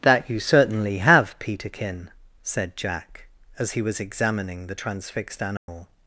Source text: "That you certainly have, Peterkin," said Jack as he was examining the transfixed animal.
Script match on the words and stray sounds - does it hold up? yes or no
no